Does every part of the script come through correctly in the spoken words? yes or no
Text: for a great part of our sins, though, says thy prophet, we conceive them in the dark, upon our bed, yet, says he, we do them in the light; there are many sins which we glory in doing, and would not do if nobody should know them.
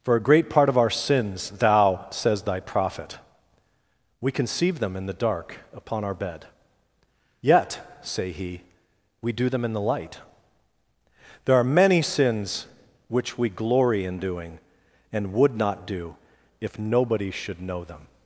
no